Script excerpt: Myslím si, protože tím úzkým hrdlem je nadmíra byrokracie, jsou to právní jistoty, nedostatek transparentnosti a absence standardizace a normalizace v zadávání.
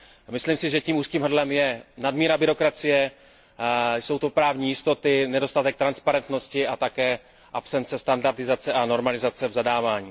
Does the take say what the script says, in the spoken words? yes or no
no